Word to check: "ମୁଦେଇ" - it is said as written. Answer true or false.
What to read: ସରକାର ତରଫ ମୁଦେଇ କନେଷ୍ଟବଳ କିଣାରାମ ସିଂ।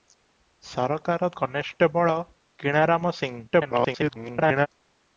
false